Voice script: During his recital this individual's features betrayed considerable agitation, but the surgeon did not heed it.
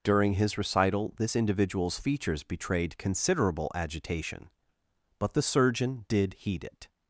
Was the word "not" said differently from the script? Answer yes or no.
yes